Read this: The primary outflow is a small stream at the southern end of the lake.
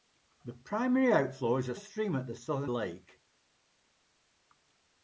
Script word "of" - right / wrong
wrong